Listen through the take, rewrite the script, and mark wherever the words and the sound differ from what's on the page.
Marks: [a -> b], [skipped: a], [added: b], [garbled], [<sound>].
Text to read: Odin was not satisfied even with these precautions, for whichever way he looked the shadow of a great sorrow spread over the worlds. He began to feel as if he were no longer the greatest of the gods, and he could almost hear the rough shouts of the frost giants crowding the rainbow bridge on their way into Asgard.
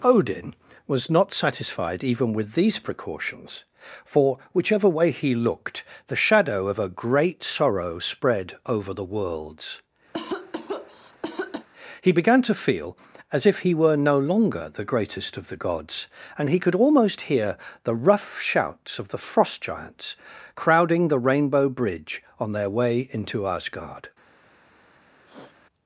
Odin was not satisfied even with these precautions, for whichever way he looked the shadow of a great sorrow spread over the worlds. [cough] He began to feel as if he were no longer the greatest of the gods, and he could almost hear the rough shouts of the frost giants crowding the rainbow bridge on their way into Asgard. [sniff]